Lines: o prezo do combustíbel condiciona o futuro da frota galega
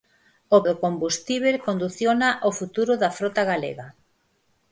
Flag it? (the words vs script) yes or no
yes